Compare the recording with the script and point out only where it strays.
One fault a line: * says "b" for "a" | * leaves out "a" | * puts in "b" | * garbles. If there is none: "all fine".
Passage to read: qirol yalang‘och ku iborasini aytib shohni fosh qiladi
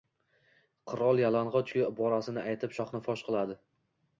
all fine